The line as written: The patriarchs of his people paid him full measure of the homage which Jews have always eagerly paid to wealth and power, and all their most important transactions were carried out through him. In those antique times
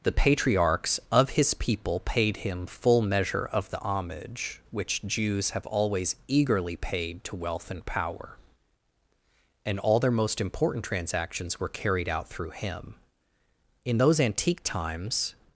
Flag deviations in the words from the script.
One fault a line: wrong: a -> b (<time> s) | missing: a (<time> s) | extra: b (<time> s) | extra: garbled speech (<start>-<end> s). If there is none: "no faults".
no faults